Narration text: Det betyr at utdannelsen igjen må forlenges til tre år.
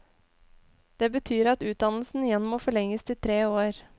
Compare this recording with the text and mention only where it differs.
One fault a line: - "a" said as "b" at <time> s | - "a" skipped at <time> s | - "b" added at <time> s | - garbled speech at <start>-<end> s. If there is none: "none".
none